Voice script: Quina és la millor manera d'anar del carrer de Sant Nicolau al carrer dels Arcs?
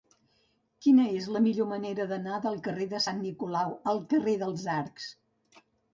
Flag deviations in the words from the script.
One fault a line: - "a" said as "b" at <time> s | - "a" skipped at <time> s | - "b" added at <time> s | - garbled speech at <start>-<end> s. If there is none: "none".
none